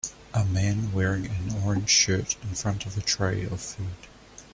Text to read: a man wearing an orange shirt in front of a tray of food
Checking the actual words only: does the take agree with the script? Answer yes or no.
yes